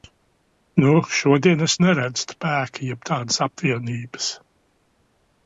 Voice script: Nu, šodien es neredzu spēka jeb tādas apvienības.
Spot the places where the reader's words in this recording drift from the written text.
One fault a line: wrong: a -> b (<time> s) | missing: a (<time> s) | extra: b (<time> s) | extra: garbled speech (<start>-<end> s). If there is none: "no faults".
no faults